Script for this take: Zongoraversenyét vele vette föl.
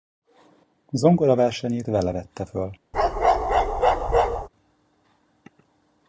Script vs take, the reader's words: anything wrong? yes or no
no